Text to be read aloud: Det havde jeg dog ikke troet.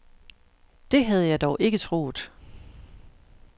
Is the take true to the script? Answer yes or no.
yes